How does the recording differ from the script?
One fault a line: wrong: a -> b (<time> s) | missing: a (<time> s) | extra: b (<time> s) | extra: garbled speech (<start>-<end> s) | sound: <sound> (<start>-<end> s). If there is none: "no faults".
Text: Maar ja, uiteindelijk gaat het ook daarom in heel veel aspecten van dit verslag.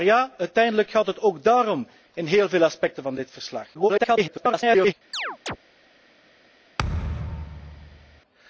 extra: garbled speech (3.7-4.9 s)
sound: chirp (5.1-5.6 s)
sound: thud (6.8-8.2 s)